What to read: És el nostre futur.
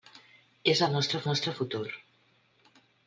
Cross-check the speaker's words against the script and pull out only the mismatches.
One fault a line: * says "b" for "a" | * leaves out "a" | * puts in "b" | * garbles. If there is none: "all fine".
* puts in "nostre"